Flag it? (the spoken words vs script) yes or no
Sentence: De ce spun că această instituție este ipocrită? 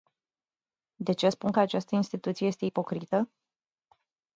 no